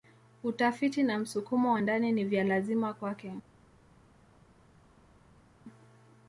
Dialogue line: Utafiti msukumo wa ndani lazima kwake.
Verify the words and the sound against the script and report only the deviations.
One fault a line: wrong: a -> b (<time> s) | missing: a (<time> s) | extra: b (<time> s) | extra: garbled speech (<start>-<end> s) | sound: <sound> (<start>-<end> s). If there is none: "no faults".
extra: na (1.0 s)
extra: ni vya (2.1 s)